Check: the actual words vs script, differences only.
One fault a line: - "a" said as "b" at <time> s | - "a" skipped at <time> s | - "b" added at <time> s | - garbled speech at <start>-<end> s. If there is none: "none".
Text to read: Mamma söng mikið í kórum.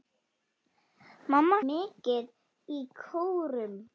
- "söng" skipped at 1.6 s